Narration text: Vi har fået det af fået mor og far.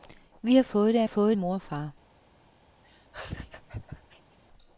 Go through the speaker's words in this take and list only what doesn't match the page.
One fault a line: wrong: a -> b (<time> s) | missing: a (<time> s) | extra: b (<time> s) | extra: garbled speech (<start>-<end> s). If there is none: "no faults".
no faults